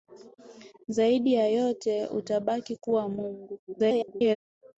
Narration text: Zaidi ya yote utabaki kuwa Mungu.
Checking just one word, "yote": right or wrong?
right